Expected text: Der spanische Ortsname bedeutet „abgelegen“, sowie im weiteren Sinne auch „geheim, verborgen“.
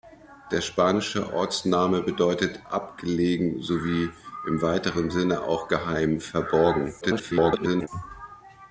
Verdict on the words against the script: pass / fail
fail